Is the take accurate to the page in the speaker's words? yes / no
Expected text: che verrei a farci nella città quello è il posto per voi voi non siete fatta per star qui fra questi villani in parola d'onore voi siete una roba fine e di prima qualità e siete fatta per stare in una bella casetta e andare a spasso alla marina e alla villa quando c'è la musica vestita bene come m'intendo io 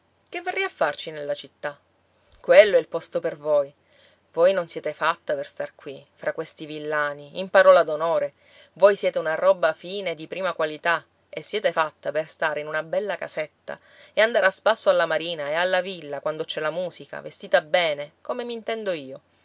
yes